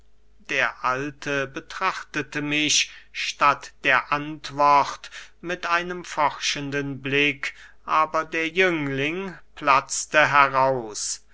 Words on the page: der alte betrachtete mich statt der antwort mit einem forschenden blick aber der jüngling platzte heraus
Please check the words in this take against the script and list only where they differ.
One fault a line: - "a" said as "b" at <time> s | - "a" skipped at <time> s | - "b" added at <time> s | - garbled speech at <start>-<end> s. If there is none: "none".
none